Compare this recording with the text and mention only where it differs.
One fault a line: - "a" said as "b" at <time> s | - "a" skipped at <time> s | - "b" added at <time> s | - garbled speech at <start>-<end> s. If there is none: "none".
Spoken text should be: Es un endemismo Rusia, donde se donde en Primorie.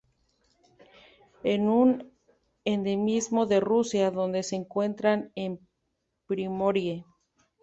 - "de" added at 3.5 s
- "donde" said as "encuentran" at 4.5 s